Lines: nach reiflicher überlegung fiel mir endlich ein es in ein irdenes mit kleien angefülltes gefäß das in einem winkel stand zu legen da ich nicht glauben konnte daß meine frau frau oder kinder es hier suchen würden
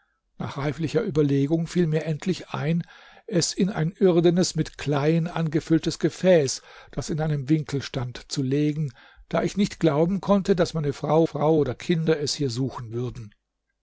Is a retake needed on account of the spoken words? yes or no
no